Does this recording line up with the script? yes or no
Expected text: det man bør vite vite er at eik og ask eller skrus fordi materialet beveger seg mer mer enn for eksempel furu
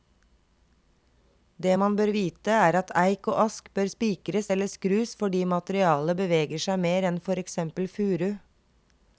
no